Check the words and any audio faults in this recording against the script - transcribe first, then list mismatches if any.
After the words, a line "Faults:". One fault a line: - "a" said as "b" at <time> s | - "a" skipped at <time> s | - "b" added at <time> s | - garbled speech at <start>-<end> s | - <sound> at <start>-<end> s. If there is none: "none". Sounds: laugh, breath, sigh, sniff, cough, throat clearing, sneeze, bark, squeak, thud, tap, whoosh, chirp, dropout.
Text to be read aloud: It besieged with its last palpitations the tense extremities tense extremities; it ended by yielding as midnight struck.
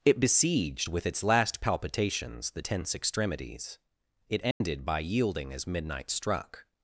It besieged with its last palpitations the tense extremities; it ended by yielding as midnight struck.
Faults:
- "tense extremities" skipped at 3.8 s
- dropout at 4.5-4.6 s